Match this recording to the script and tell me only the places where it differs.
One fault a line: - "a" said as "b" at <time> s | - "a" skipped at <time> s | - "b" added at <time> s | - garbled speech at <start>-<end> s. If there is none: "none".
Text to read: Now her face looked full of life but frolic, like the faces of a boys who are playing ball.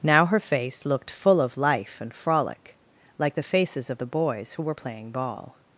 - "but" said as "and" at 2.0 s
- "a" said as "the" at 4.0 s
- "are" said as "were" at 4.6 s